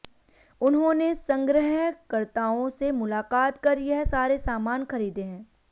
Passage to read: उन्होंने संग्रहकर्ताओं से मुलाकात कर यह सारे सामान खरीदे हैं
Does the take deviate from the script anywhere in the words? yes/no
no